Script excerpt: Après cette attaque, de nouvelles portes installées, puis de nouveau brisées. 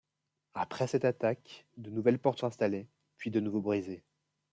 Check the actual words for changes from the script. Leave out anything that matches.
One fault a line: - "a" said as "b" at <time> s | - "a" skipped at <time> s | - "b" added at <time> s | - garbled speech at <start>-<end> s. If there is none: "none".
none